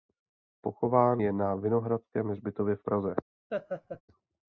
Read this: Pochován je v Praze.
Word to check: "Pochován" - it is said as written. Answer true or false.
true